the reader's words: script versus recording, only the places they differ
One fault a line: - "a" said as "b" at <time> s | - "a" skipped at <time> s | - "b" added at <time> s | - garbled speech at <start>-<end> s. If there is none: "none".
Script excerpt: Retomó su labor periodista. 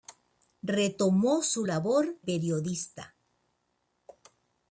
none